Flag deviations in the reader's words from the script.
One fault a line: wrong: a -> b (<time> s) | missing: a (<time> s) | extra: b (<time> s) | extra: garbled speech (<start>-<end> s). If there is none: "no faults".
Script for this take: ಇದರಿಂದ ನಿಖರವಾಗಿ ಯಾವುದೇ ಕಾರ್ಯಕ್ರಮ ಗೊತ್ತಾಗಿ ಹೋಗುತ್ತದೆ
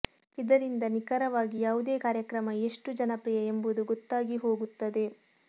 extra: ಎಷ್ಟು ಜನಪ್ರಿಯ ಎಂಬುದು (2.7 s)